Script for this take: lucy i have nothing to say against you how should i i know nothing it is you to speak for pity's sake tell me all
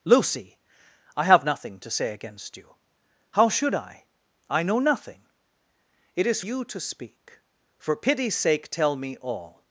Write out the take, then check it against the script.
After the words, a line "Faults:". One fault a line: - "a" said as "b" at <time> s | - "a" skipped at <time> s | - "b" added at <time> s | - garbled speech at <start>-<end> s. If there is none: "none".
lucy i have nothing to say against you how should i i know nothing it is you to speak for pity's sake tell me all
Faults:
none